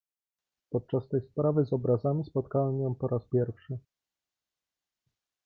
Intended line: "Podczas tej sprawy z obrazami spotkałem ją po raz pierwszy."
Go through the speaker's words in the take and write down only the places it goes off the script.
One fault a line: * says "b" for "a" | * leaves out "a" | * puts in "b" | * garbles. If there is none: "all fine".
all fine